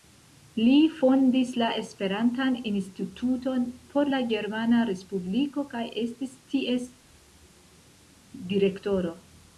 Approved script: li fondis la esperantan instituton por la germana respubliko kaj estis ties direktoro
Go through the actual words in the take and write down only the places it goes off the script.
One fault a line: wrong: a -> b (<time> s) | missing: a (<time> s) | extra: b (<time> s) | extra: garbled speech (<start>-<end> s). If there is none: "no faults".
no faults